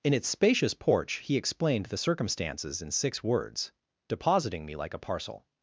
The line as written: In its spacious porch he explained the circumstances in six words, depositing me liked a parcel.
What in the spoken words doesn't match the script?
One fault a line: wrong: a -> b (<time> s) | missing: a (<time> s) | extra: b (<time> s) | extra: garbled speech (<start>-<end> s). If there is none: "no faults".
wrong: liked -> like (4.8 s)